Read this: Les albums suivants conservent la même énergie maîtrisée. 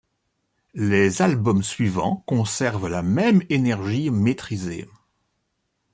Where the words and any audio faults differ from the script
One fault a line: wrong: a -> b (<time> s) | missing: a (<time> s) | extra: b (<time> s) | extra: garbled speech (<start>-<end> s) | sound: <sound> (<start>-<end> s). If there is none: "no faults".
no faults